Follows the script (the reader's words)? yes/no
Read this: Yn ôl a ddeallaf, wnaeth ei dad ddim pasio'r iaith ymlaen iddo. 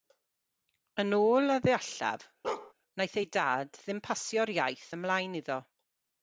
yes